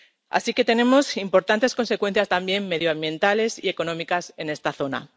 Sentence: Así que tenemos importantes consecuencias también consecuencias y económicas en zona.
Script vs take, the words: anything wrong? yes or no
yes